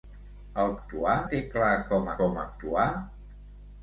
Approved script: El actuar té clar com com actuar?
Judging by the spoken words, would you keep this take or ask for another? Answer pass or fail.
pass